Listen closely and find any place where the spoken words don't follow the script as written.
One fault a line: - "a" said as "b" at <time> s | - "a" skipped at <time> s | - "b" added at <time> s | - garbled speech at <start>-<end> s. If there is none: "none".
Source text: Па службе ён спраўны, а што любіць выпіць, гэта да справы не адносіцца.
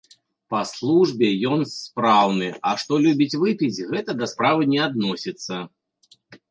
none